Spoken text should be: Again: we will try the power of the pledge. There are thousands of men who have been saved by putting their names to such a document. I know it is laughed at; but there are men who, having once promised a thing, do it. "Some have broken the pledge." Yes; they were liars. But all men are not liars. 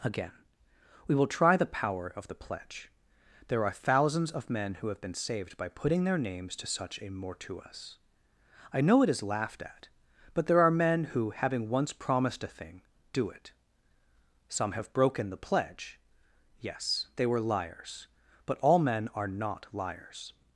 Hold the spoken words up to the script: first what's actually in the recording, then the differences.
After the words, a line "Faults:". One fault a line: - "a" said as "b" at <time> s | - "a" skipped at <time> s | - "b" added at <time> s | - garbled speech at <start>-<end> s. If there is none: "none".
Again: we will try the power of the pledge. There are thousands of men who have been saved by putting their names to such a mortuus. I know it is laughed at; but there are men who, having once promised a thing, do it. "Some have broken the pledge." Yes; they were liars. But all men are not liars.
Faults:
- "document" said as "mortuus" at 7.1 s